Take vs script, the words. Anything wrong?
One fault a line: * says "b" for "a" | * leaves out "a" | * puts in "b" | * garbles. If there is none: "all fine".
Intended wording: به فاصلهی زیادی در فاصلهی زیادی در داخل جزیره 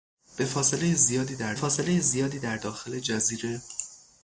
all fine